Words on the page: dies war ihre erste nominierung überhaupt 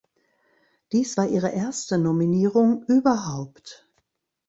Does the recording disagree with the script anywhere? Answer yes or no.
no